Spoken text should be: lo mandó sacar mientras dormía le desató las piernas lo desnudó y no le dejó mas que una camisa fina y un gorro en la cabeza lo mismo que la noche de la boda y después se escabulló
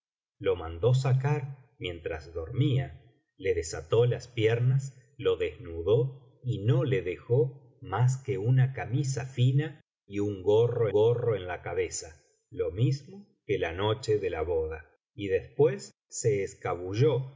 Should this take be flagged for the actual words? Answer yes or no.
yes